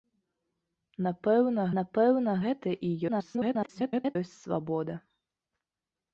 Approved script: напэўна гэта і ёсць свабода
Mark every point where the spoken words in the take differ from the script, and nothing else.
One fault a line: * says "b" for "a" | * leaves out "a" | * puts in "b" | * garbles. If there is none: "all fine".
* puts in "напэўна"
* garbles